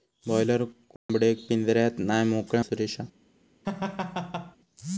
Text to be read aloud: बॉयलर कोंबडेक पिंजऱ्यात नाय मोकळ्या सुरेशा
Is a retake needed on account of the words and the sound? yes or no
yes